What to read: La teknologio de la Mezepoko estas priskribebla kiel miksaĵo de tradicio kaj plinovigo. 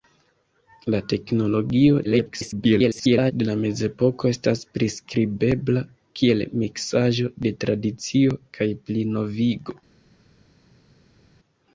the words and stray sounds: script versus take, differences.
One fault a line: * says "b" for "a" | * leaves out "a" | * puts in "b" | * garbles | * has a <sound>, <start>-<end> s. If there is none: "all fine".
* garbles